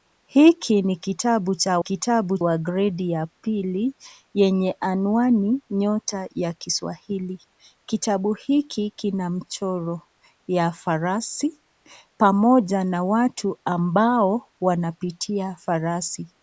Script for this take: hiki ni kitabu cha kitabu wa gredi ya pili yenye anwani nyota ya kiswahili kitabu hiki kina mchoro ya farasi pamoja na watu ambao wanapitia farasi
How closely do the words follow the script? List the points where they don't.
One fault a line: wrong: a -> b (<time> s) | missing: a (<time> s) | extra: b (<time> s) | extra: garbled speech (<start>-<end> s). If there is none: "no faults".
no faults